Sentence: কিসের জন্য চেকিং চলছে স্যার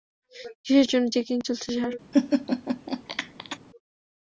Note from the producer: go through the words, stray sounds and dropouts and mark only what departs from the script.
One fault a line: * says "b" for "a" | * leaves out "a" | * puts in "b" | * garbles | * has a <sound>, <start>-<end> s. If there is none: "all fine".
* has a laugh, 2.1-3.6 s